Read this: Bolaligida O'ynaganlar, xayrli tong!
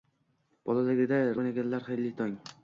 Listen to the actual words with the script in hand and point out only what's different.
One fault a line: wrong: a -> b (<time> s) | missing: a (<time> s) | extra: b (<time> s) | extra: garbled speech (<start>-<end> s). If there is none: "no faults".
no faults